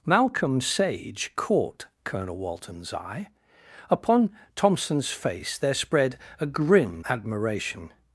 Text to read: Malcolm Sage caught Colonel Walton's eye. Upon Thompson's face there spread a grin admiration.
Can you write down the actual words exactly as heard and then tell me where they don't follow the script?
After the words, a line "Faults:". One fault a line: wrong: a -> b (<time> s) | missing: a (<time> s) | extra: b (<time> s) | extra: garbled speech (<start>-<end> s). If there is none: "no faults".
Malcolm Sage caught Colonel Walton's eye. Upon Thompson's face there spread a grin admiration.
Faults:
no faults